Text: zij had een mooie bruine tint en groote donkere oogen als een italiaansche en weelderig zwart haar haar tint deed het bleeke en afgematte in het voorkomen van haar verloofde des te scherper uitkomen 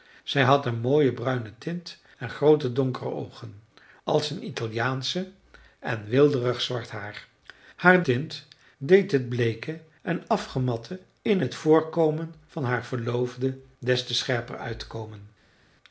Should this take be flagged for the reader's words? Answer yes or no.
no